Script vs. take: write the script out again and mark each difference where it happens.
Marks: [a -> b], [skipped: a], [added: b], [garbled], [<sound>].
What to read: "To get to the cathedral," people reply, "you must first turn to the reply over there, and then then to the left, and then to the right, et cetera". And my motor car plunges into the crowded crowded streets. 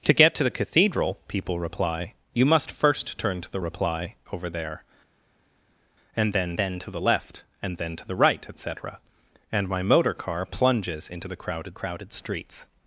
"To get to the cathedral," people reply, "you must first turn to the reply over there, and then then to the left, and then to the right, et cetera". And my motor car plunges into the crowded crowded streets.